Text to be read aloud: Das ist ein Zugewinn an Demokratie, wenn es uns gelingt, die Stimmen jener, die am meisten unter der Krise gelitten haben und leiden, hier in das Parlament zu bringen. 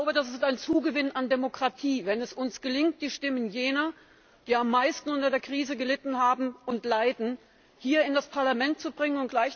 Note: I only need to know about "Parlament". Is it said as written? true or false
true